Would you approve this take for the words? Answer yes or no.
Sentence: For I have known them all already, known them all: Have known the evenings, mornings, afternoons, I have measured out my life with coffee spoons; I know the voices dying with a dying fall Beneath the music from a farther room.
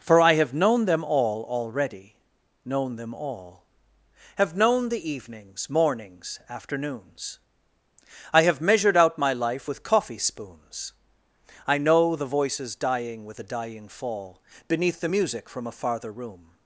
yes